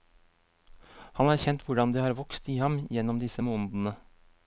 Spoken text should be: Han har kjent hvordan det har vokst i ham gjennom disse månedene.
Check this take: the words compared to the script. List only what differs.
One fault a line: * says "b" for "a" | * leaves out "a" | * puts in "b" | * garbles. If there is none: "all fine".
all fine